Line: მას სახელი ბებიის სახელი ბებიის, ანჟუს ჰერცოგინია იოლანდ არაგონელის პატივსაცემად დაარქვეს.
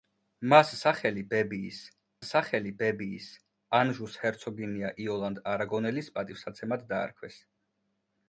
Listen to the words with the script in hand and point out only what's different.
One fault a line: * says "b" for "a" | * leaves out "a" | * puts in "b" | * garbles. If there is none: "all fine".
all fine